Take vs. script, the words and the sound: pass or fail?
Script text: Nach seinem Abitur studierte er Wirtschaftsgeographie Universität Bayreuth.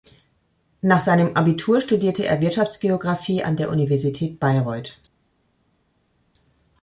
fail